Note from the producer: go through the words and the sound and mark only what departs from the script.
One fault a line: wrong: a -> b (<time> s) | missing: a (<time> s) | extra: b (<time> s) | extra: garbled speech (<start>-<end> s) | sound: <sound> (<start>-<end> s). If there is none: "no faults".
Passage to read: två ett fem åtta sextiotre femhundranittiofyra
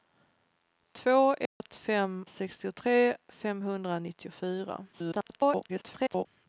sound: dropout (1.5-1.6 s)
missing: åtta (2.2 s)
extra: garbled speech (4.9-6.3 s)